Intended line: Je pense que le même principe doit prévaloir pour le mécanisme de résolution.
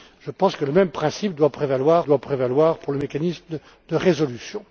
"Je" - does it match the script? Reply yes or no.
yes